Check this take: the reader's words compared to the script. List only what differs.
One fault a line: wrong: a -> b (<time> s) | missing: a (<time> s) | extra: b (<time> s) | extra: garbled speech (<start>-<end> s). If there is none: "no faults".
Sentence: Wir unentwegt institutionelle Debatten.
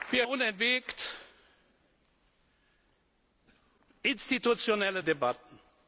no faults